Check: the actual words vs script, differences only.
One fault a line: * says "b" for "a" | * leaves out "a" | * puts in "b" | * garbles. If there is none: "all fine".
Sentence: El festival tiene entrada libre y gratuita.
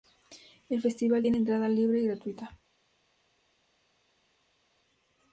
all fine